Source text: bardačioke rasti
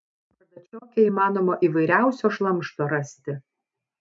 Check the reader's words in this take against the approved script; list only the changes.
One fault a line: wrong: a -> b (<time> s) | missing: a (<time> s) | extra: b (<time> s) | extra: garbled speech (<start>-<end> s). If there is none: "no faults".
extra: įmanoma įvairiausio šlamšto (1.1 s)